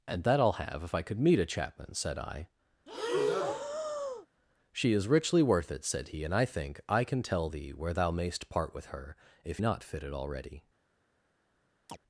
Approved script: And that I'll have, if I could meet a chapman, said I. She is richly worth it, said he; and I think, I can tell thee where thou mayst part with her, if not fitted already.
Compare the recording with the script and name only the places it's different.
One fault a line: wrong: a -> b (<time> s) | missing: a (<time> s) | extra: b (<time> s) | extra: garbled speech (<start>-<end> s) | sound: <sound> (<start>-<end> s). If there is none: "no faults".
sound: breath (2.9-4.3 s)
sound: chirp (11.9-12.0 s)